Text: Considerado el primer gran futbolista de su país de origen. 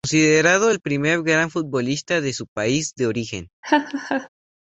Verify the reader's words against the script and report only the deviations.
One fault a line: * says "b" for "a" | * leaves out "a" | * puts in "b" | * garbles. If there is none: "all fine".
all fine